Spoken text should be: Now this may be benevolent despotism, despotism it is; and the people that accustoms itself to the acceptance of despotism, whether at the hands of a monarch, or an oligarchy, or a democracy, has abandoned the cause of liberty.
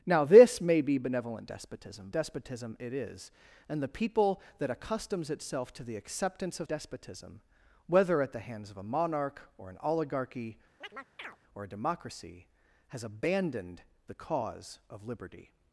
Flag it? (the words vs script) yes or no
no